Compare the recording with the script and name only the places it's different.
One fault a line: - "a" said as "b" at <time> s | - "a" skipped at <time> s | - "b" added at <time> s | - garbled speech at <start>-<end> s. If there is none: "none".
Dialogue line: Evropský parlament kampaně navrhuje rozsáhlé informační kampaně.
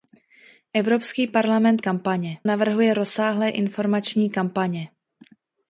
none